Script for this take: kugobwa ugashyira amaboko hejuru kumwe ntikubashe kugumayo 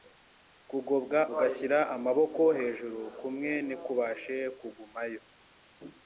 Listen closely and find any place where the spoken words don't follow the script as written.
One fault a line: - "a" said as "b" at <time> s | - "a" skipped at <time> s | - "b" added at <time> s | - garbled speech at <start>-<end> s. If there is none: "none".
none